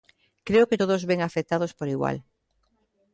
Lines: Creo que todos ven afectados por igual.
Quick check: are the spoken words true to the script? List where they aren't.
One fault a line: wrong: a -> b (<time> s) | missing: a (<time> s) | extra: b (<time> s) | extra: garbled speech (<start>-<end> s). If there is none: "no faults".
no faults